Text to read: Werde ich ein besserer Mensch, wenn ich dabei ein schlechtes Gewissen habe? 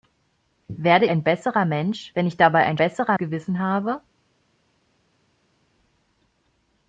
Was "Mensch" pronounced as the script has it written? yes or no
yes